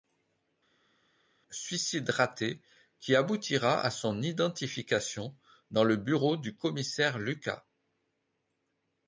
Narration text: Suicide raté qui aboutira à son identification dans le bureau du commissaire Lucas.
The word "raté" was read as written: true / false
true